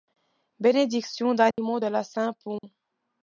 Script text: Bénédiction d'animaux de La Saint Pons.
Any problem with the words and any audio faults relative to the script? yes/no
yes